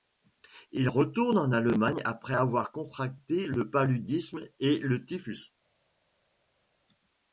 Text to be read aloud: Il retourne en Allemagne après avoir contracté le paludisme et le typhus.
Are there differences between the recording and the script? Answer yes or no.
no